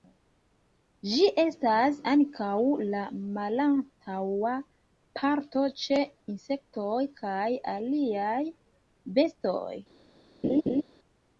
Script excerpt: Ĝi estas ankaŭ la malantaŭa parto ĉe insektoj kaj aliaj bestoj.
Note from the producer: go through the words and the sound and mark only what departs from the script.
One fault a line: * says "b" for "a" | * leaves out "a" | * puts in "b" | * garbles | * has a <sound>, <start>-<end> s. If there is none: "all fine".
* has a laugh, 10.4-10.8 s